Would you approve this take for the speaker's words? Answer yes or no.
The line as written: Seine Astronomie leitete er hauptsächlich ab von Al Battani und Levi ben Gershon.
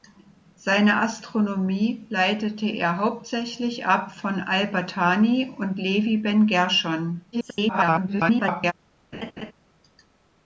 no